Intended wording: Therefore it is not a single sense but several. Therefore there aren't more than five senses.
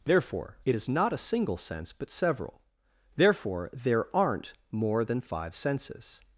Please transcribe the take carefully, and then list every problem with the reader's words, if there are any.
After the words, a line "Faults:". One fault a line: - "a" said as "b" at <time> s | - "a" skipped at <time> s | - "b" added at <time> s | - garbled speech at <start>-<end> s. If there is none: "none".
Therefore it is not a single sense but several. Therefore there aren't more than five senses.
Faults:
none